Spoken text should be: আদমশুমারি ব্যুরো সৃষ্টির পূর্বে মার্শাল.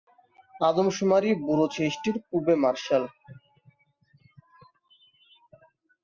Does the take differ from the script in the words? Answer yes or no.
no